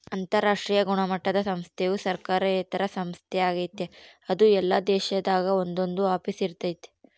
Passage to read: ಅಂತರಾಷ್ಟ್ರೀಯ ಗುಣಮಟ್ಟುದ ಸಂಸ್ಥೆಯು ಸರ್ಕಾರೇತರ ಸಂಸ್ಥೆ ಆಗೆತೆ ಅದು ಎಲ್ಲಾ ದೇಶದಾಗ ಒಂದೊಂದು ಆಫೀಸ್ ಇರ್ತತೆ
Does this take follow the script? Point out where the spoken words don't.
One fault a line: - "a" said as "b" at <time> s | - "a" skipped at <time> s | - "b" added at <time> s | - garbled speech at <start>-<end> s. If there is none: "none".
none